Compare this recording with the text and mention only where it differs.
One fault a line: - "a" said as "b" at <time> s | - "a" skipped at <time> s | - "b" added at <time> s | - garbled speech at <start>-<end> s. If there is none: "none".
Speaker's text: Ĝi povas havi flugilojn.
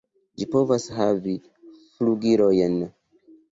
none